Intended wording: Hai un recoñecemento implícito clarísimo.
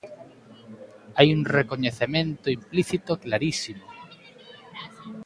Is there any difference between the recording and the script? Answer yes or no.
no